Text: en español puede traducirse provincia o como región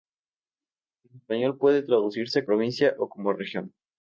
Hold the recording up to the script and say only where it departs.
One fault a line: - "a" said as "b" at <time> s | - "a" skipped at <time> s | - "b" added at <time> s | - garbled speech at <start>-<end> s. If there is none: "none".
none